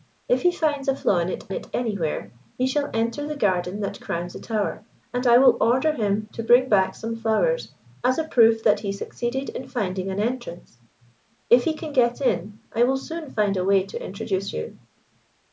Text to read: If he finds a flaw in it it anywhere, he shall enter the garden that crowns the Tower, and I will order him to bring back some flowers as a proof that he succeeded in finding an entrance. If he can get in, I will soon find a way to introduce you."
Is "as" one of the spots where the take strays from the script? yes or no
no